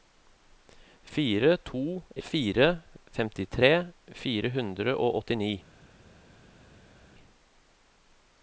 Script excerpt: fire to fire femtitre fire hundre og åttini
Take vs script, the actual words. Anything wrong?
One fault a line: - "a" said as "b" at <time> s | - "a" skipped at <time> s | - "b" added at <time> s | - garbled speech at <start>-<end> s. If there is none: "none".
none